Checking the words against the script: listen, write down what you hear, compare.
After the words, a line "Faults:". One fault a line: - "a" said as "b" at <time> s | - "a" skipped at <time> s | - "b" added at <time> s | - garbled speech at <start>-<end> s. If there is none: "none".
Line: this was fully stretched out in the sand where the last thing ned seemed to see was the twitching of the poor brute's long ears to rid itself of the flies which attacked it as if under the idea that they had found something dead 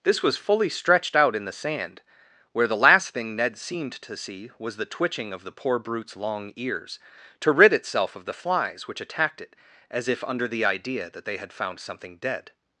this was fully stretched out in the sand where the last thing ned seemed to see was the twitching of the poor brute's long ears to rid itself of the flies which attacked it as if under the idea that they had found something dead
Faults:
none